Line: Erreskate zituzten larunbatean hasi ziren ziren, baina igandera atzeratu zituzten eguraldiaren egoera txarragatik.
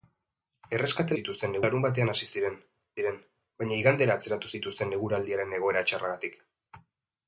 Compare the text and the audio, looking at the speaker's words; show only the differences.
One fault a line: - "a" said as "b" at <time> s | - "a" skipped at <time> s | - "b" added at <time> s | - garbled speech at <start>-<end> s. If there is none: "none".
none